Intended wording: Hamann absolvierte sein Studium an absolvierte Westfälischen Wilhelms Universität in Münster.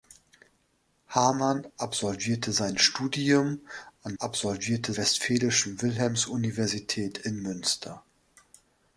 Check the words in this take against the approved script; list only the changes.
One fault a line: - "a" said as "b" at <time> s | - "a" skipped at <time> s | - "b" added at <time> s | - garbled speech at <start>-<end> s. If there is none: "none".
none